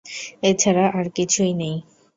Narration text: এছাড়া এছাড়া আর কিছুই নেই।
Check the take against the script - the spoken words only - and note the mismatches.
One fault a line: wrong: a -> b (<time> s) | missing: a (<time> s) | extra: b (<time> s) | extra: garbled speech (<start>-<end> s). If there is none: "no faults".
missing: এছাড়া (0.9 s)